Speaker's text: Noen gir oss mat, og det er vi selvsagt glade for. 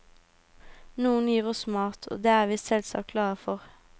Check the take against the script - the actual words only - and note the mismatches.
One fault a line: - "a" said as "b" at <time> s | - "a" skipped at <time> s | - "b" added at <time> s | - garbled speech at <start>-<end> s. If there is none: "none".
none